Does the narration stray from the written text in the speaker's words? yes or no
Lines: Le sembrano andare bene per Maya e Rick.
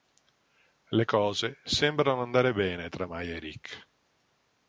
yes